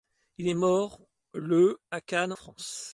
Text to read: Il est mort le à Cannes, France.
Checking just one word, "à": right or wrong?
right